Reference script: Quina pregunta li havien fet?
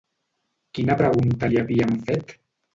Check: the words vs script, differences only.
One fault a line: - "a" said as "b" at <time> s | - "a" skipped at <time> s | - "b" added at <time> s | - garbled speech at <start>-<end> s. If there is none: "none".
none